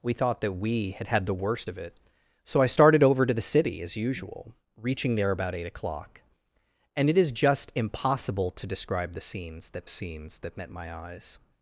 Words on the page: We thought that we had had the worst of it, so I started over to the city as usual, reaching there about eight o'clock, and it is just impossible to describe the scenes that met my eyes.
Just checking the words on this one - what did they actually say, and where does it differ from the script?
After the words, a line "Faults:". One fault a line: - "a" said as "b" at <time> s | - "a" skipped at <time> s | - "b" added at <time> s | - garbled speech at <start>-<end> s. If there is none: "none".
We thought that we had had the worst of it, so I started over to the city as usual, reaching there about eight o'clock, and it is just impossible to describe the scenes that scenes that met my eyes.
Faults:
- "scenes that" added at 9.9 s